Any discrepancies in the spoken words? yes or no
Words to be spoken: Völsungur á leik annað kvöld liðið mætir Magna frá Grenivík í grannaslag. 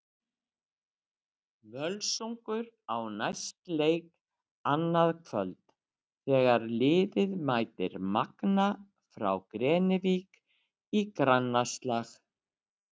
yes